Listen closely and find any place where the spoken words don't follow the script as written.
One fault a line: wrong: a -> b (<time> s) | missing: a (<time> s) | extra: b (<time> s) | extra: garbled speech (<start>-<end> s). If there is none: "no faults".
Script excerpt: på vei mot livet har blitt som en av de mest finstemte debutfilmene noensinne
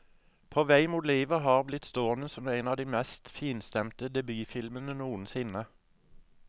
extra: stående (1.9 s)